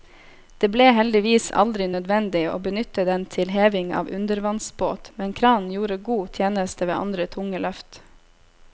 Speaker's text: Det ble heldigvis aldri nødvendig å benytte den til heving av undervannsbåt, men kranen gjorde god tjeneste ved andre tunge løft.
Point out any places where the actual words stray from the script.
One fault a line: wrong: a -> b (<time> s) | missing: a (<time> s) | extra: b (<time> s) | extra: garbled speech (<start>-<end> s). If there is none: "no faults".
no faults